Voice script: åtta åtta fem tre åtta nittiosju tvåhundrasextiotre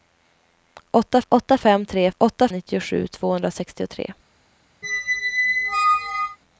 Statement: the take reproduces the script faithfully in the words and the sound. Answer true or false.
false